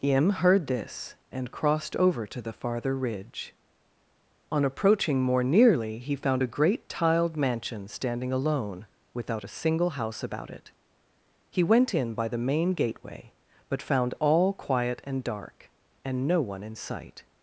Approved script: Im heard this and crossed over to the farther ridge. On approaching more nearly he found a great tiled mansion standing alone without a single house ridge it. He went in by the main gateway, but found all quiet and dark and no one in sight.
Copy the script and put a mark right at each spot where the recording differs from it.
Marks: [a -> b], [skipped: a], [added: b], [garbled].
Im heard this and crossed over to the farther ridge. On approaching more nearly he found a great tiled mansion standing alone without a single house [ridge -> about] it. He went in by the main gateway, but found all quiet and dark and no one in sight.